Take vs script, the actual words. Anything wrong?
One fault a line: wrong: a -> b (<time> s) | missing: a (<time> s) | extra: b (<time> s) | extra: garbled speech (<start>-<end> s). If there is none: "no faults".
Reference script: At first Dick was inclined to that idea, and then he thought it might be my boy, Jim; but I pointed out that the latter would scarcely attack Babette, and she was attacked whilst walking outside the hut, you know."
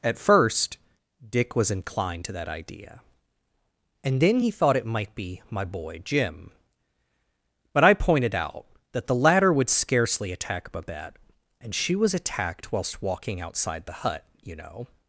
no faults